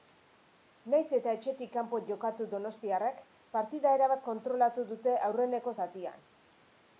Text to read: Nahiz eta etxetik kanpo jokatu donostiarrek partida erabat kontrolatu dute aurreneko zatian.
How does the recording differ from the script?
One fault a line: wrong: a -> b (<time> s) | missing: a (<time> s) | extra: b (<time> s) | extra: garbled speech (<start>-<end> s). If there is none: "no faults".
no faults